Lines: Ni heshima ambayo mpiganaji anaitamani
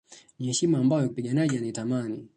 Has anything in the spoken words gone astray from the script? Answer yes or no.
no